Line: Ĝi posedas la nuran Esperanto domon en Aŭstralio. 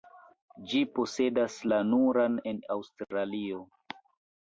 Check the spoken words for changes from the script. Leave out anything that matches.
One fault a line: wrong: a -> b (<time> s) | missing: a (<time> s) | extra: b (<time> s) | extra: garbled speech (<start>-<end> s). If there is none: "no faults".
missing: Esperanto domon (2.4 s)